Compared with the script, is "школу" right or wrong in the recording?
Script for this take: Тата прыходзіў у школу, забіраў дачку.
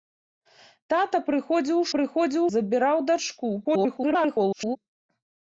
wrong